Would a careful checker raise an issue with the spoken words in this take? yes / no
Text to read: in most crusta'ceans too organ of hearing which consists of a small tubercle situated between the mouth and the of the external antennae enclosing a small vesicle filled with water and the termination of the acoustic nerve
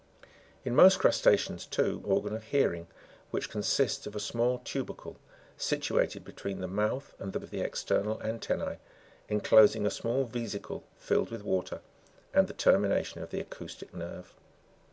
no